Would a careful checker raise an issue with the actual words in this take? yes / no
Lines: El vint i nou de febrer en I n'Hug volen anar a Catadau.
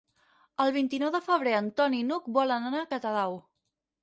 yes